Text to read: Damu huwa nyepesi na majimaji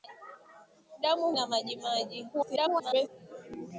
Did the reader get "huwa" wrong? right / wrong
wrong